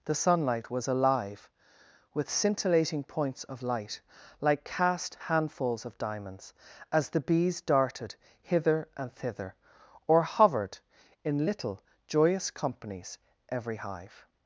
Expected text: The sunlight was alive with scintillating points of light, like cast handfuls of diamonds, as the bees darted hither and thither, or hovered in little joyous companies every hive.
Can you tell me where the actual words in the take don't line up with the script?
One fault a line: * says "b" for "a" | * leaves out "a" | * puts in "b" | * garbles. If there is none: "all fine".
all fine